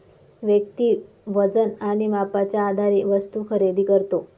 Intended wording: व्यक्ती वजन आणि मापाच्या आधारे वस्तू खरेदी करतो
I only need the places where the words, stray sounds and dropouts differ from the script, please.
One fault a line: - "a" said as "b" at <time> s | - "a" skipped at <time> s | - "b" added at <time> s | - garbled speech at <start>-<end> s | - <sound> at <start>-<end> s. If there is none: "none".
none